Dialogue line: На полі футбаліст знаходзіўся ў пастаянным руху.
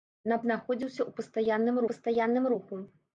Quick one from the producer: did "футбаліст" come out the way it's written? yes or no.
no